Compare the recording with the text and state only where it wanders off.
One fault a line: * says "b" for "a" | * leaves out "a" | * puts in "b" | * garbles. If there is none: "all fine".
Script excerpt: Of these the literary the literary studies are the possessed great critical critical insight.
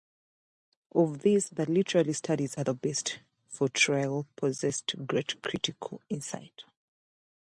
* leaves out "the literary"
* puts in "best for Traill"
* leaves out "critical"